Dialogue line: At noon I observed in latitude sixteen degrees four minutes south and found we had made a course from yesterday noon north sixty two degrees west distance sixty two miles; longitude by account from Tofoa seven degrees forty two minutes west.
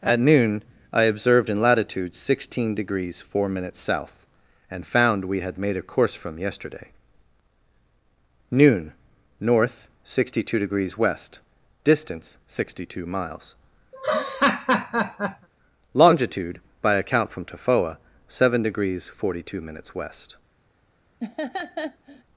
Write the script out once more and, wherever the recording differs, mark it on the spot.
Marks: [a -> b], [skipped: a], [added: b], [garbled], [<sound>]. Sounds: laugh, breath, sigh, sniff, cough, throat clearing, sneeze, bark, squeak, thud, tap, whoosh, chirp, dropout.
At noon I observed in latitude sixteen degrees four minutes south and found we had made a course from yesterday noon north sixty two degrees west distance sixty two miles; [laugh] longitude by account from Tofoa seven degrees forty two minutes west. [laugh]